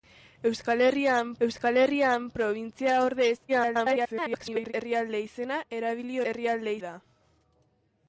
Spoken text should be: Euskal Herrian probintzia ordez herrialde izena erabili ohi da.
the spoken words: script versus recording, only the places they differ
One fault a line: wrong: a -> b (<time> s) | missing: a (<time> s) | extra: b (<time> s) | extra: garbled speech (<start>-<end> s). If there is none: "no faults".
extra: euskal Herrian (1.5 s)
extra: garbled speech (3.5-4.7 s)
wrong: ohi -> herrialde (6.3 s)